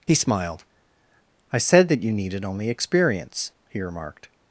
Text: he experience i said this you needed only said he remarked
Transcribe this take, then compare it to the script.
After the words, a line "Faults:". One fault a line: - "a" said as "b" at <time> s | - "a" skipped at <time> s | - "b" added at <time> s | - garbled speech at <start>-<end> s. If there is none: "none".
he smiled i said that you needed only experience he remarked
Faults:
- "experience" said as "smiled" at 0.1 s
- "this" said as "that" at 1.9 s
- "said" said as "experience" at 2.7 s